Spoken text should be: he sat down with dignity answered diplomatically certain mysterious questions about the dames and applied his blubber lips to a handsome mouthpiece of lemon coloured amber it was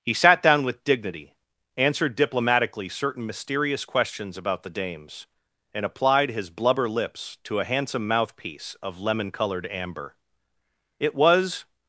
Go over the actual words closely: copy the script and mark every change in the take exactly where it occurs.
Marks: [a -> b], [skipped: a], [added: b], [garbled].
he sat down with dignity answered diplomatically certain mysterious questions about the dames and applied his blubber lips to a handsome mouthpiece of lemon coloured amber it was